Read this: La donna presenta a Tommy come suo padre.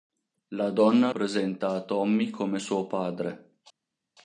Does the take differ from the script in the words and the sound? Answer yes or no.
no